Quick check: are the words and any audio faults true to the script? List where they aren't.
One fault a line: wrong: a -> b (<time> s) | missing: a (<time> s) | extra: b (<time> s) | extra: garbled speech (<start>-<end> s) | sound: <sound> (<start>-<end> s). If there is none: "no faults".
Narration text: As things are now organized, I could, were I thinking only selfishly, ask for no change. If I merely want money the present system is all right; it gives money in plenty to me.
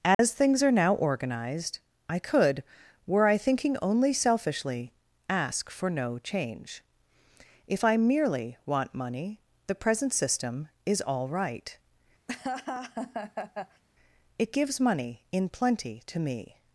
sound: dropout (0.1-0.2 s)
sound: laugh (12.3-13.8 s)